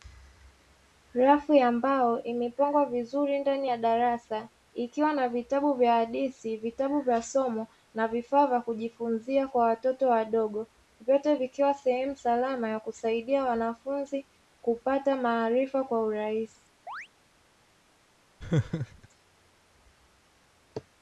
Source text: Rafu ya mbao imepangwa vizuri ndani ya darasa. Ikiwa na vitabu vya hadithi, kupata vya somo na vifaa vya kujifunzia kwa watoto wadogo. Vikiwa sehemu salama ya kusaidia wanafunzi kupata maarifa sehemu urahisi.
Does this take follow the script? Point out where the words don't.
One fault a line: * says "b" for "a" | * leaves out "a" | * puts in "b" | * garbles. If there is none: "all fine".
* says "vitabu" for "kupata"
* puts in "Vyote"
* says "kwa" for "sehemu"